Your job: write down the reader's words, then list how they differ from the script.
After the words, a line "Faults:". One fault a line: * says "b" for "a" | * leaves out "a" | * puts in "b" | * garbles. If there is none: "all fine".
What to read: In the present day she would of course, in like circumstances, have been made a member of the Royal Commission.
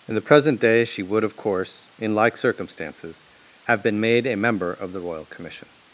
In the present day she would of course, in like circumstances, have been made a member of the Royal Commission.
Faults:
all fine